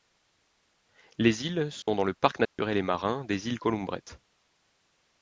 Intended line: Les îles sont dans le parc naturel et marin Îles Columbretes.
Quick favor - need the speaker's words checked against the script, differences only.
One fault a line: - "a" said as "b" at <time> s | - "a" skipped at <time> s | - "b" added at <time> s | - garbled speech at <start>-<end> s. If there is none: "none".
- "des" added at 3.2 s